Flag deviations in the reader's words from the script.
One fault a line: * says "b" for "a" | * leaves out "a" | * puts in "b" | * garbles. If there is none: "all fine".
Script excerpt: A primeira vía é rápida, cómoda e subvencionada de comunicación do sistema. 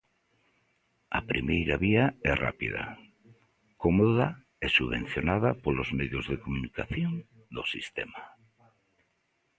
* puts in "polos medios"